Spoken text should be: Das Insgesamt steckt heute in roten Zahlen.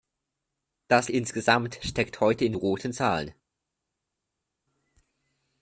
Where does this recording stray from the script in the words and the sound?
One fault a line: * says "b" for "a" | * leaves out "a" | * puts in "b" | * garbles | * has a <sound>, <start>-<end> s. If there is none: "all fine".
all fine